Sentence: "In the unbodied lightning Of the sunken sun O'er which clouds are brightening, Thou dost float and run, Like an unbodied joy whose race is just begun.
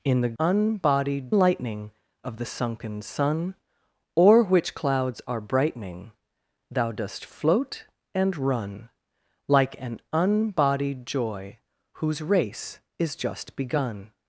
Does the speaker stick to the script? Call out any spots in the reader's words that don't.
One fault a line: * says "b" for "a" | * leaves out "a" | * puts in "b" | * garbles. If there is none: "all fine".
all fine